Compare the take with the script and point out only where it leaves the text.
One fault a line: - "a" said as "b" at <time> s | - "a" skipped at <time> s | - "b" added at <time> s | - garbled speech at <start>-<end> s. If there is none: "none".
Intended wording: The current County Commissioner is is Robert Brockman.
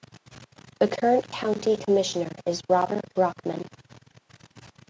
- "is" skipped at 2.6 s